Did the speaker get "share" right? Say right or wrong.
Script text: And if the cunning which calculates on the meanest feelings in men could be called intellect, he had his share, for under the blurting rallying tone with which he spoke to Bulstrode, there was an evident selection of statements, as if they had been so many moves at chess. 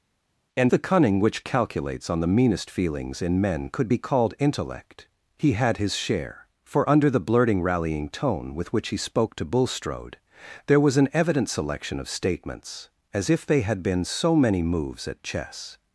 right